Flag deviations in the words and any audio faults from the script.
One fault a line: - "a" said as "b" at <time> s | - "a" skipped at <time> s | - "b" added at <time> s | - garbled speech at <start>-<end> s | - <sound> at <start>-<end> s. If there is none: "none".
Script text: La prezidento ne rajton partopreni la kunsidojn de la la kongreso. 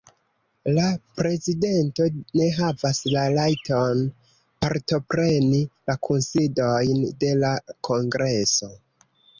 - "havas la" added at 2.5 s
- "la" skipped at 7.6 s